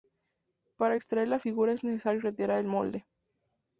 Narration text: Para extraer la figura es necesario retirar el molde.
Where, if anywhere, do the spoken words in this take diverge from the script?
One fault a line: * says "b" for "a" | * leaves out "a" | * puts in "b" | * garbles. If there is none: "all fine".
all fine